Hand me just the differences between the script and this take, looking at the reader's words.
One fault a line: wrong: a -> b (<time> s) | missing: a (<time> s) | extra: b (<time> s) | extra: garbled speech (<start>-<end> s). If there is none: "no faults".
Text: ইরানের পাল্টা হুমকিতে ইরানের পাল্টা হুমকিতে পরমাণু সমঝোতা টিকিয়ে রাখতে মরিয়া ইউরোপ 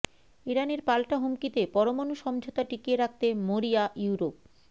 missing: ইরানের পাল্টা হুমকিতে (1.6 s)